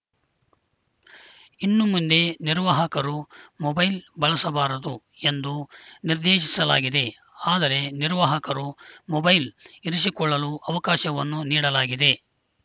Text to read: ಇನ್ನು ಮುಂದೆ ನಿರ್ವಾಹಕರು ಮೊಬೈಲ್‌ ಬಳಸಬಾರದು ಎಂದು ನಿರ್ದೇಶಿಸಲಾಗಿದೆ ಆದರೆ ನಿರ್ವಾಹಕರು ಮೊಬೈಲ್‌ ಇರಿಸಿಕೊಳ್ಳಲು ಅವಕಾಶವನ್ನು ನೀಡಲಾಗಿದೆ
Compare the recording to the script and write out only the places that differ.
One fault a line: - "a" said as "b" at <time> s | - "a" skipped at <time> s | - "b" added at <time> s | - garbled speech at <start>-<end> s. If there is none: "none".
none